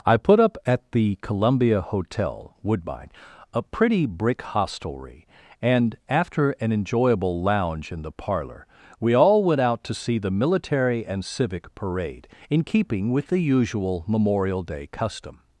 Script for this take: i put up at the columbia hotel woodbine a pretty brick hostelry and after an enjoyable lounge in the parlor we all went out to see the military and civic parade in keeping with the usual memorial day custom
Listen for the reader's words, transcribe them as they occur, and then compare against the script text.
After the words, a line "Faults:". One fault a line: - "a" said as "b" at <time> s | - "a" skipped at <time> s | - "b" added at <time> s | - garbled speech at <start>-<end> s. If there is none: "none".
i put up at the columbia hotel woodbine a pretty brick hostelry and after an enjoyable lounge in the parlor we all went out to see the military and civic parade in keeping with the usual memorial day custom
Faults:
none